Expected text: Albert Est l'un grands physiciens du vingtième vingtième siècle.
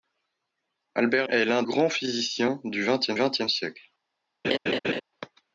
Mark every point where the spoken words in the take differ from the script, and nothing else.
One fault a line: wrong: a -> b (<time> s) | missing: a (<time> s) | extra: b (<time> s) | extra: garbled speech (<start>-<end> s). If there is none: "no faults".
no faults